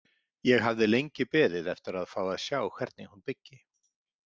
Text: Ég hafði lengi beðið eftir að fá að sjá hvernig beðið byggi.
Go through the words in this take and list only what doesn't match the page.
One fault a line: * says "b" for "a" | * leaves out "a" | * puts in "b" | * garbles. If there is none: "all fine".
* says "hún" for "beðið"